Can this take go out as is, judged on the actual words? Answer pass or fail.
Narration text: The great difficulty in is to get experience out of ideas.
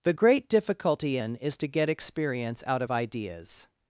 pass